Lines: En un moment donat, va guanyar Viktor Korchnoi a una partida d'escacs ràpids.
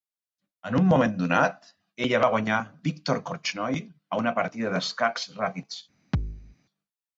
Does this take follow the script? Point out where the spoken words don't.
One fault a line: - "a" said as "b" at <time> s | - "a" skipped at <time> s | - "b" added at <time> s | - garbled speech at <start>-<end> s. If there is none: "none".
- "ella" added at 2.1 s